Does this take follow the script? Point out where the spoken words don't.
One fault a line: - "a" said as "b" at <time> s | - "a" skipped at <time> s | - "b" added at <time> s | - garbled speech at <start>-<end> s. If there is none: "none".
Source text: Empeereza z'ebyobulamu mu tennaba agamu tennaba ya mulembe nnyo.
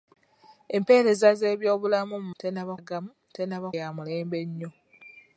none